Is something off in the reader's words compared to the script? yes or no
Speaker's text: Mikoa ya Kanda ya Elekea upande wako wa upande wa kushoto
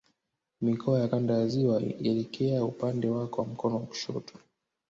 yes